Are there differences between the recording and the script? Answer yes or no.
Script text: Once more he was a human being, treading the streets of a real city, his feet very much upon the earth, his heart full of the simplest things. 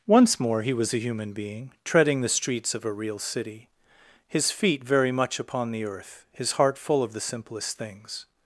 no